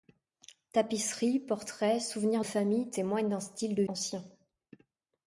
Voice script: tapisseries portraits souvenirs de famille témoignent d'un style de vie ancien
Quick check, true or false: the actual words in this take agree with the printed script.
false